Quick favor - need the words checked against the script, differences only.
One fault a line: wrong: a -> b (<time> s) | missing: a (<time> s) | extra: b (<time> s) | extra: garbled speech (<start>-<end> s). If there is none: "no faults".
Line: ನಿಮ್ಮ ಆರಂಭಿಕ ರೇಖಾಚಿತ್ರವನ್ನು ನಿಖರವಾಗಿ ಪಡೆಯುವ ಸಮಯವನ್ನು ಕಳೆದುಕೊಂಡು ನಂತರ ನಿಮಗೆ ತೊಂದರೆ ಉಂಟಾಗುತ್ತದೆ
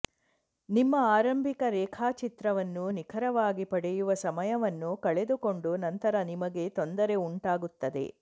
no faults